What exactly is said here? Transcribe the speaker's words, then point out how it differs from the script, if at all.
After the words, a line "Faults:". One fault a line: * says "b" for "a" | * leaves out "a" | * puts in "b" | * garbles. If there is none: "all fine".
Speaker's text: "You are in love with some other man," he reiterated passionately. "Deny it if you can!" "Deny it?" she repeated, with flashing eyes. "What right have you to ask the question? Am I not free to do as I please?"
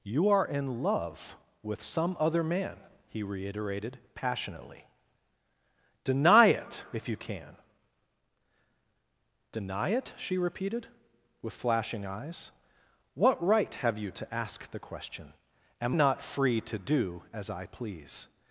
"You are in love with some other man," he reiterated passionately. "Deny it if you can!" "Deny it?" she repeated, with flashing eyes. "What right have you to ask the question? Am not free to do as I please?"
Faults:
* leaves out "I"